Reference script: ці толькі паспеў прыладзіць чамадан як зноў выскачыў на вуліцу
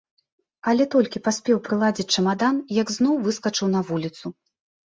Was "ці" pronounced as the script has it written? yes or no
no